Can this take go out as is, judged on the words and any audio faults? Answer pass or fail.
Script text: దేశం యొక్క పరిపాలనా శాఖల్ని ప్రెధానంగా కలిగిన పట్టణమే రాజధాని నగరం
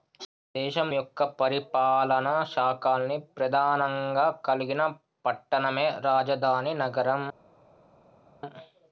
pass